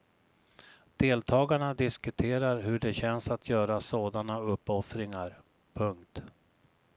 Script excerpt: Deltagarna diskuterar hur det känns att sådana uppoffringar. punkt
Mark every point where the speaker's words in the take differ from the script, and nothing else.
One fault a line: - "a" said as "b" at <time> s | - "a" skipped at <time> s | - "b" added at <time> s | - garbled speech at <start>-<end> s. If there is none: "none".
- "göra" added at 3.5 s